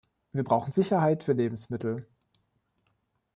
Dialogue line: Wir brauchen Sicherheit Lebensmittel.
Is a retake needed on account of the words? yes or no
yes